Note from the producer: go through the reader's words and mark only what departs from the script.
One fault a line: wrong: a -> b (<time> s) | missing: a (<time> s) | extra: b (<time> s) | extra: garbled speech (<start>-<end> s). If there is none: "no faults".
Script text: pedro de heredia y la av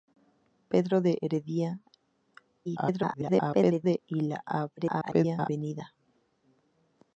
extra: garbled speech (2.7-4.0 s)
extra: garbled speech (4.8-5.5 s)